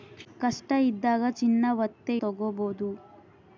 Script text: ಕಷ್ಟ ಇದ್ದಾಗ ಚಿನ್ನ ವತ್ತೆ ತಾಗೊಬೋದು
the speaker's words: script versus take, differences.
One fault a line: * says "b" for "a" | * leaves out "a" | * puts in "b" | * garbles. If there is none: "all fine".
all fine